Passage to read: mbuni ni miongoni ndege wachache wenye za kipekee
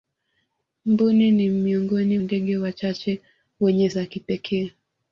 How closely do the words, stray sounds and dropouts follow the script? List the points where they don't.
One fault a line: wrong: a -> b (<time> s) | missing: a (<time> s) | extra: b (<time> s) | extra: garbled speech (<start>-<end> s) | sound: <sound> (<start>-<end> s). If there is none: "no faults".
no faults